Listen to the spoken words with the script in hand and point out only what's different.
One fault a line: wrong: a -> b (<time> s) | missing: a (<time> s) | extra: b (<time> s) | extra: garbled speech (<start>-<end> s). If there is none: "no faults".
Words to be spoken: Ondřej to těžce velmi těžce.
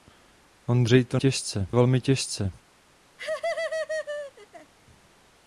no faults